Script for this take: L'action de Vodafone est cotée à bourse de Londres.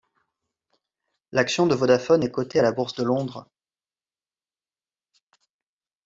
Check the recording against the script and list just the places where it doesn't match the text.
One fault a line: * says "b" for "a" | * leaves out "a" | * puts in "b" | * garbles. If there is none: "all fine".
* puts in "la"